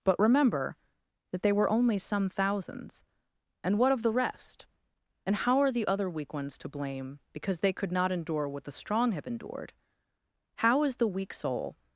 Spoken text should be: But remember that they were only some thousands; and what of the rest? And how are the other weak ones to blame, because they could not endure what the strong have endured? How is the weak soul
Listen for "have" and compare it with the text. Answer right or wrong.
right